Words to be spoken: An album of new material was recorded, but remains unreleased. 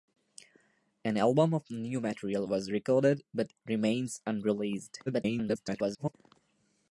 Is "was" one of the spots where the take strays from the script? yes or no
no